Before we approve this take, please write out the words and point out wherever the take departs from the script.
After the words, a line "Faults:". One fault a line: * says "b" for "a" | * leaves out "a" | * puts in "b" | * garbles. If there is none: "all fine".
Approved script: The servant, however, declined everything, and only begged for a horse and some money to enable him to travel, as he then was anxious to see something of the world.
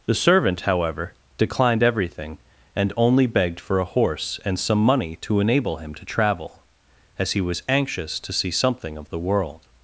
The servant, however, declined everything, and only begged for a horse and some money to enable him to travel, as he was anxious to see something of the world.
Faults:
* leaves out "then"